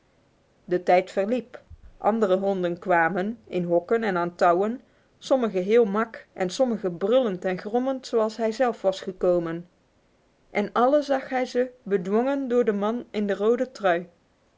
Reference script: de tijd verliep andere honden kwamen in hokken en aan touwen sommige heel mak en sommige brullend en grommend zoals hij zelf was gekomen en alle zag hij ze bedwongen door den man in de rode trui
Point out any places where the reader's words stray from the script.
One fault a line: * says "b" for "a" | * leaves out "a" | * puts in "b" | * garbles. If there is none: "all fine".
all fine